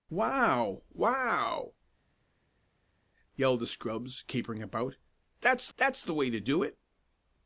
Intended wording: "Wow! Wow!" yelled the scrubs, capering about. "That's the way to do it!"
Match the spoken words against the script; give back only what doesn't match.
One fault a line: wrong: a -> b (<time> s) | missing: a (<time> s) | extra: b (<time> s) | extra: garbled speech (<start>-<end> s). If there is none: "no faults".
extra: that's (5.8 s)